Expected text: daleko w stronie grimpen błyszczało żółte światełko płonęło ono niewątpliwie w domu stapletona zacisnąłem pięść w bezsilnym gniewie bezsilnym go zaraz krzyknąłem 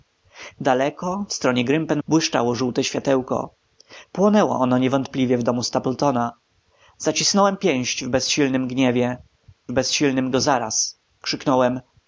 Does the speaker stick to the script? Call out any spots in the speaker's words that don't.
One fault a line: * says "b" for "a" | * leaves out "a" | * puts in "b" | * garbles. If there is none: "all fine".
all fine